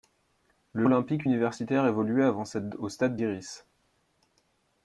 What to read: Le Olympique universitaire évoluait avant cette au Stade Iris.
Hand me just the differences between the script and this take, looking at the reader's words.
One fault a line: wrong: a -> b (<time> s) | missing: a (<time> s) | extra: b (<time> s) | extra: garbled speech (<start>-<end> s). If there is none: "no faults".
no faults